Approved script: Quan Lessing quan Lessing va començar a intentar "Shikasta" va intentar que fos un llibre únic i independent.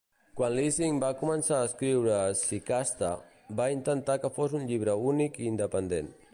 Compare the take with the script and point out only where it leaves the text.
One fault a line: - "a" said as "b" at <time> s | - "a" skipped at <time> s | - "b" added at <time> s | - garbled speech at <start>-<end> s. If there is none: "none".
- "quan Lessing" skipped at 0.9 s
- "intentar" said as "escriure" at 1.7 s